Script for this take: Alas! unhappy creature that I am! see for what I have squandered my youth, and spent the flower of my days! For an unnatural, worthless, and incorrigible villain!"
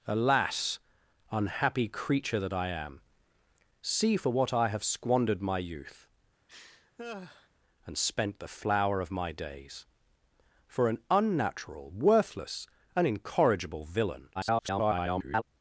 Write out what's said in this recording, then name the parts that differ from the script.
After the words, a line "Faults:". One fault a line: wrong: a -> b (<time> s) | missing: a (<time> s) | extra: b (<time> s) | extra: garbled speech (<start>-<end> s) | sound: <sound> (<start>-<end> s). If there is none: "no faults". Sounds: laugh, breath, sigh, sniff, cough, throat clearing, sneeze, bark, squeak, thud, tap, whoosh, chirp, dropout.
Alas! unhappy creature that I am! see for what I have squandered my youth, and spent the flower of my days! For an unnatural, worthless, and incorrigible villain!" [garbled]
Faults:
sound: laugh (6.5-7.5 s)
extra: garbled speech (14.3-15.4 s)